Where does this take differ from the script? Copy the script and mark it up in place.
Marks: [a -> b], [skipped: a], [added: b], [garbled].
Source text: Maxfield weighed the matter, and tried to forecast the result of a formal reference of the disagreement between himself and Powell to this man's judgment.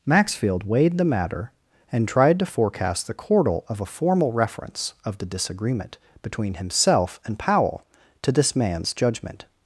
Maxfield weighed the matter, and tried to forecast the [result -> chordal] of a formal reference of the disagreement between himself and Powell to this man's judgment.